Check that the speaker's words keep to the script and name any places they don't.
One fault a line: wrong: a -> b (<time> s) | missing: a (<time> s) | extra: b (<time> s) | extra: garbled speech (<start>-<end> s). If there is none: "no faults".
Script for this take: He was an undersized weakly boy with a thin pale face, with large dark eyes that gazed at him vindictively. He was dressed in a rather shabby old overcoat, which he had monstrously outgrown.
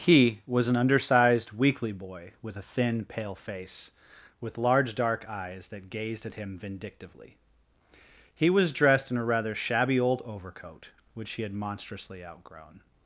no faults